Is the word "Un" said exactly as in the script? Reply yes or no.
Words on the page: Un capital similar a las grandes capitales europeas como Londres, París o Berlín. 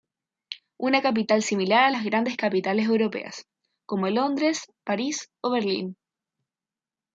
no